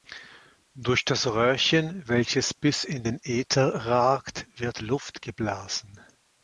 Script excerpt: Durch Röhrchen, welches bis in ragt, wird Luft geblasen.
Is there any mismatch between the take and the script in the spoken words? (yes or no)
yes